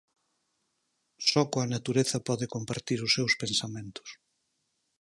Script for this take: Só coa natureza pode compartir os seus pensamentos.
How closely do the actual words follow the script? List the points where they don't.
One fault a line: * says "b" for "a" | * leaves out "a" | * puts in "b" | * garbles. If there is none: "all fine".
all fine